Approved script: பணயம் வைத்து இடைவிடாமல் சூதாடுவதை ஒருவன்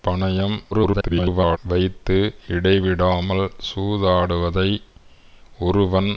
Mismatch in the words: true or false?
true